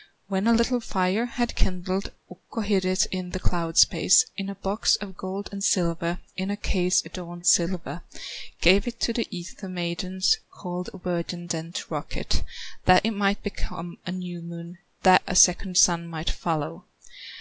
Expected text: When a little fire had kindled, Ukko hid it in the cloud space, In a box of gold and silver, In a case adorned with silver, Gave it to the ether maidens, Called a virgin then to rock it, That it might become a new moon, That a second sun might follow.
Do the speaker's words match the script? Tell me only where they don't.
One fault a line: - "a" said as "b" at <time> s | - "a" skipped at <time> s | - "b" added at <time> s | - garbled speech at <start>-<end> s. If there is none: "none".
- "with" skipped at 7.4 s